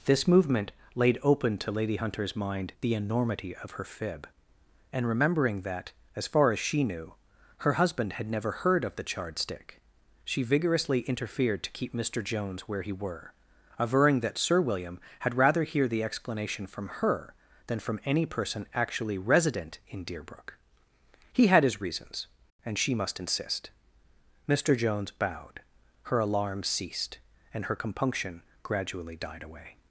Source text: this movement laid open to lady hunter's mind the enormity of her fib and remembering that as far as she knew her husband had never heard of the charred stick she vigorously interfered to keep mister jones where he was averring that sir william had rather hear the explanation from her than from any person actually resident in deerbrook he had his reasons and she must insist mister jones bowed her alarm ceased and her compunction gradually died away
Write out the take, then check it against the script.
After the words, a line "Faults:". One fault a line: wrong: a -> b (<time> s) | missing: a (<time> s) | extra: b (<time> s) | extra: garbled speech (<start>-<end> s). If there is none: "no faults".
this movement laid open to lady hunter's mind the enormity of her fib and remembering that as far as she knew her husband had never heard of the charred stick she vigorously interfered to keep mister jones where he were averring that sir william had rather hear the explanation from her than from any person actually resident in deerbrook he had his reasons and she must insist mister jones bowed her alarm ceased and her compunction gradually died away
Faults:
wrong: was -> were (12.9 s)